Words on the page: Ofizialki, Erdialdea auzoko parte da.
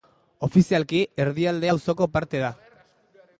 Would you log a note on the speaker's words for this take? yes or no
no